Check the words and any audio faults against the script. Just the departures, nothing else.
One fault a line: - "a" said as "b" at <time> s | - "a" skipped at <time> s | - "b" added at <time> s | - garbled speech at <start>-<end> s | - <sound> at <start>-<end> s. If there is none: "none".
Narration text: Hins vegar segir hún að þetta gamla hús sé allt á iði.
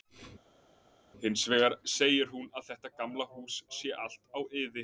none